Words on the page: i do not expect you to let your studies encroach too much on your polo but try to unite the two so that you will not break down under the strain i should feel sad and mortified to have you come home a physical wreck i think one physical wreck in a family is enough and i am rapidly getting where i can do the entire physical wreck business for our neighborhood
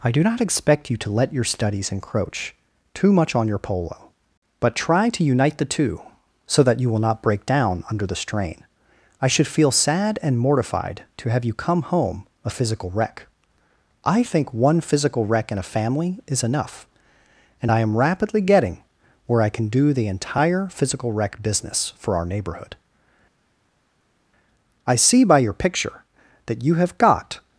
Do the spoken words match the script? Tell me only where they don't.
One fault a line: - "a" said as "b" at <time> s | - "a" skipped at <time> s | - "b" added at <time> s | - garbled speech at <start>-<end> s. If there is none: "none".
- "i see by your picture that you have got" added at 24.9 s